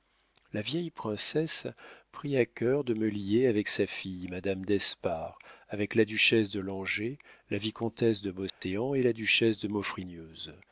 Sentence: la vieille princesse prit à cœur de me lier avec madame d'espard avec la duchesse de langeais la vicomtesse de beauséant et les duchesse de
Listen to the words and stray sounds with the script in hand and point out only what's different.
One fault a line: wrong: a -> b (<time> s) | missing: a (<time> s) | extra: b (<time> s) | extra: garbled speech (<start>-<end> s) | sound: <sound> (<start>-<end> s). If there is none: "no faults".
extra: sa fille (3.7 s)
sound: dropout (8.5-8.6 s)
wrong: les -> la (9.0 s)